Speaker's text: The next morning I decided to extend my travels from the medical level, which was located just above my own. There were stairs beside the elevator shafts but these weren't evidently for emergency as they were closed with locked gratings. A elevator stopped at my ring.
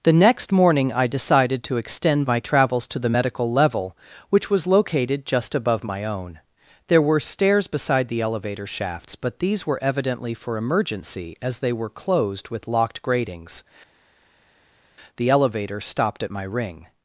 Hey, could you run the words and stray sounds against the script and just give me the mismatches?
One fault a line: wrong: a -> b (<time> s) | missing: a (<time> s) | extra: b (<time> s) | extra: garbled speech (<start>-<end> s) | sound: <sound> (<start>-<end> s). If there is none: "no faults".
wrong: from -> to (2.9 s)
wrong: weren't -> were (9.7 s)
wrong: A -> The (15.2 s)